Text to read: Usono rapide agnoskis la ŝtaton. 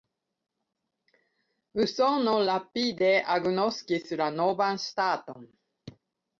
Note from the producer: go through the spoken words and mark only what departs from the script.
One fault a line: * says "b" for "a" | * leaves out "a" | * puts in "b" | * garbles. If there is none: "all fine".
* puts in "novan"